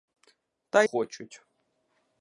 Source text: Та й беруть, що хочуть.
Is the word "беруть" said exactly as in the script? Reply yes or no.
no